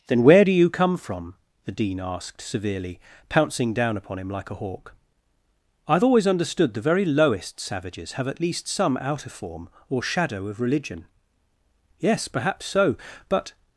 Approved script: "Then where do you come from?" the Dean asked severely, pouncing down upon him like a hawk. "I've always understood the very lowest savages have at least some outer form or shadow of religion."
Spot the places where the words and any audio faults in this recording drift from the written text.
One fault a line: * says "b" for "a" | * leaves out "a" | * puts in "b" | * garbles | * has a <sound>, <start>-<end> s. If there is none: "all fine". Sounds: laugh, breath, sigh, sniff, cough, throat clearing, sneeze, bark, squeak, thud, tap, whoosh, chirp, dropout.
* puts in "Yes perhaps so but"